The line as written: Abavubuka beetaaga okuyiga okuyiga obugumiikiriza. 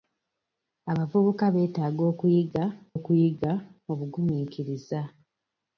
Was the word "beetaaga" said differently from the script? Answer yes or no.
no